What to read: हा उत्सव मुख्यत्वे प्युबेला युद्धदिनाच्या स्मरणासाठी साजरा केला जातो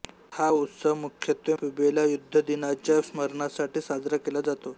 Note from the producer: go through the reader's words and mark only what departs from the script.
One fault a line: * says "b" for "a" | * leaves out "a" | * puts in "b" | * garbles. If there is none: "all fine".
all fine